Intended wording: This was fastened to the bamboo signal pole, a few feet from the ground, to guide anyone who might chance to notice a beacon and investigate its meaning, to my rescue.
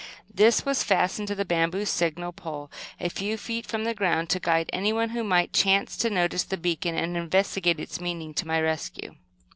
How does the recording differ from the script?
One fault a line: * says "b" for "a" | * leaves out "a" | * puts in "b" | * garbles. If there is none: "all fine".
* says "the" for "a"